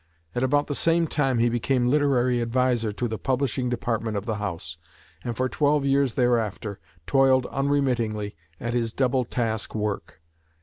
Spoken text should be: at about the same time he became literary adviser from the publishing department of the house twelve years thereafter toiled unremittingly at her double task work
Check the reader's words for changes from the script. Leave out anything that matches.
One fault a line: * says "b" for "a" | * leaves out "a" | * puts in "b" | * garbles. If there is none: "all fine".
* says "to" for "from"
* puts in "and for"
* says "his" for "her"